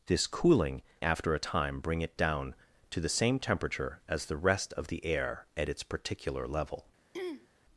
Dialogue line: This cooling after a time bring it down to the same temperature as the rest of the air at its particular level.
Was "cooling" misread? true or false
false